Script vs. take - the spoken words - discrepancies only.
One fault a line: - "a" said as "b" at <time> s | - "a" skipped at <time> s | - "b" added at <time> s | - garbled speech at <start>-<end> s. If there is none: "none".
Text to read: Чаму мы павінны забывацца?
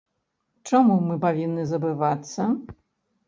none